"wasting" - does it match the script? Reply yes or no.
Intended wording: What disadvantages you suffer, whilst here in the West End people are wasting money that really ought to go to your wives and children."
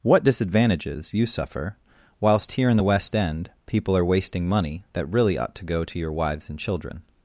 yes